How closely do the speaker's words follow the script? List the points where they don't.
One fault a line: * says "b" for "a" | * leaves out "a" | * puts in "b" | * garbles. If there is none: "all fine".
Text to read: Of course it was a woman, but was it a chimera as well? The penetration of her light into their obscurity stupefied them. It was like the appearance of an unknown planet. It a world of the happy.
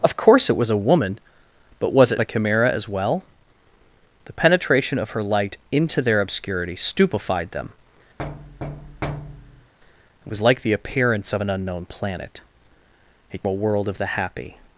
all fine